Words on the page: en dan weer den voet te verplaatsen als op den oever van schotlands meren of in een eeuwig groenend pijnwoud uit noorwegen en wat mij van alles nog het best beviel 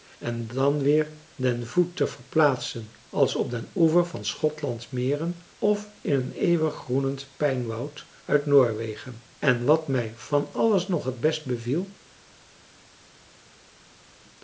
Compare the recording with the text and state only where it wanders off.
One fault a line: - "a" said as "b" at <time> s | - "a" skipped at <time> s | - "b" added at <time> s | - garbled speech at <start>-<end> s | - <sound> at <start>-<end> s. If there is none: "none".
none